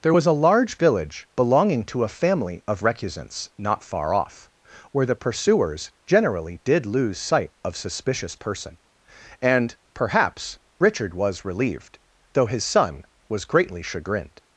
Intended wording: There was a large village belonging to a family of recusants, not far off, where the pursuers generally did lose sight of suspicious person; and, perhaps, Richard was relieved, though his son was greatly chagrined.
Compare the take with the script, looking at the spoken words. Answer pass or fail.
pass